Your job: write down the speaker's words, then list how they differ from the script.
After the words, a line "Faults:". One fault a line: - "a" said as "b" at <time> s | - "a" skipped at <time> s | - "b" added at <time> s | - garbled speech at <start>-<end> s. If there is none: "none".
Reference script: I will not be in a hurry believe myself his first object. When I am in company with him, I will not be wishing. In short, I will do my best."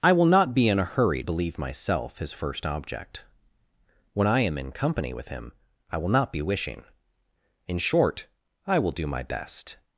I will not be in a hurry believe myself his first object. When I am in company with him, I will not be wishing. In short, I will do my best."
Faults:
none